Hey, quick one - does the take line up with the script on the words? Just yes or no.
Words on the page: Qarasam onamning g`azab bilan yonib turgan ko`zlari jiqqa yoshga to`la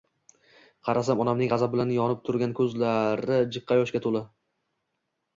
yes